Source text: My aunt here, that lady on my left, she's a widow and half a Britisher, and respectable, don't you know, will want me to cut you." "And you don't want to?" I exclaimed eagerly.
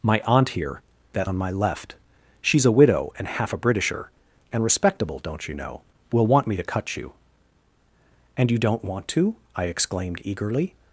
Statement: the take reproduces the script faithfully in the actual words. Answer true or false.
false